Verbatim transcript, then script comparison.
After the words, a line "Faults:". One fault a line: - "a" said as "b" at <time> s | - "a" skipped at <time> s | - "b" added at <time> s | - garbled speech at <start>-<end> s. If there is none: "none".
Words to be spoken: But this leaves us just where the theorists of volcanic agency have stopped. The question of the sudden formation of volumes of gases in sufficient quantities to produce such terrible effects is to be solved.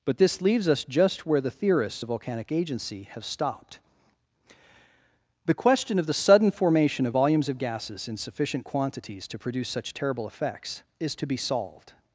But this leaves us just where the theorists of volcanic agency have stopped. The question of the sudden formation of volumes of gases in sufficient quantities to produce such terrible effects is to be solved.
Faults:
none